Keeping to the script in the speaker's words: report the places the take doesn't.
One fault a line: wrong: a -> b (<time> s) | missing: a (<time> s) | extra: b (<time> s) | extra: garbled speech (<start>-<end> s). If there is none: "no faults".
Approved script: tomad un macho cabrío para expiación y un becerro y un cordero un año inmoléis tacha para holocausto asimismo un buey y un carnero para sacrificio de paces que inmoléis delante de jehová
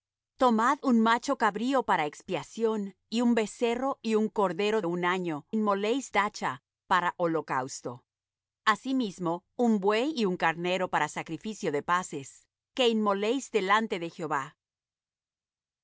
no faults